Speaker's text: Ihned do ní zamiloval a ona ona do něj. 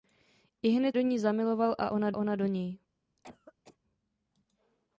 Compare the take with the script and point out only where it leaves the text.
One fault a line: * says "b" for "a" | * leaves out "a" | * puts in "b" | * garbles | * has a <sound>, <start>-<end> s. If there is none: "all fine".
* has a cough, 3.2-3.8 s